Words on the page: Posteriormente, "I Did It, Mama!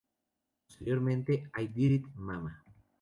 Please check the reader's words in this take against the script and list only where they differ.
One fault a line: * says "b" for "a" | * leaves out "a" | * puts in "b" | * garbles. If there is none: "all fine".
all fine